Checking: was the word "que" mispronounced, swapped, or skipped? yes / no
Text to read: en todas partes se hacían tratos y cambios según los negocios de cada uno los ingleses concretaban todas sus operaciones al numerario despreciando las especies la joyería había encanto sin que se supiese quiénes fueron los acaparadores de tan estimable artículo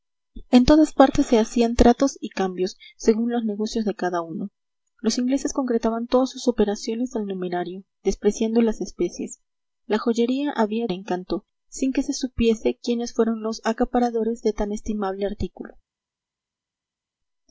no